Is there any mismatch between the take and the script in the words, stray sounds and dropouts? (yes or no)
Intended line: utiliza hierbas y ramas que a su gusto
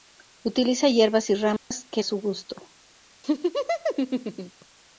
yes